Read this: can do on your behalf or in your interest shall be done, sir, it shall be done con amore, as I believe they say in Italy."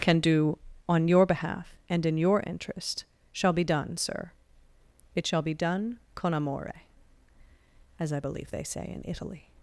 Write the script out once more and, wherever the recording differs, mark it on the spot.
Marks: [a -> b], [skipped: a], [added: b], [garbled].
can do on your behalf [or -> and] in your interest shall be done, sir, it shall be done con amore, as I believe they say in Italy."